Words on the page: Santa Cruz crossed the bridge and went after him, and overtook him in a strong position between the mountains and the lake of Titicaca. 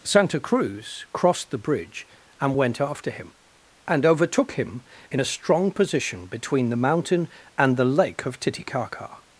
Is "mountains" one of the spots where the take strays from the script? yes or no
yes